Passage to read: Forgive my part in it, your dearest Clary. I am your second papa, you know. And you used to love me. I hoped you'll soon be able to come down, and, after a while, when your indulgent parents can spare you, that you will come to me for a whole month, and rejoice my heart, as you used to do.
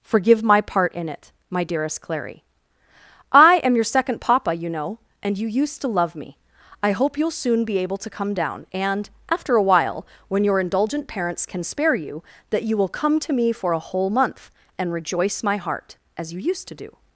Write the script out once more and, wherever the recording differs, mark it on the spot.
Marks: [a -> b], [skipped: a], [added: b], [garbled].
Forgive my part in it, [your -> my] dearest Clary. I am your second papa, you know. And you used to love me. I [hoped -> hope] you'll soon be able to come down, and, after a while, when your indulgent parents can spare you, that you will come to me for a whole month, and rejoice my heart, as you used to do.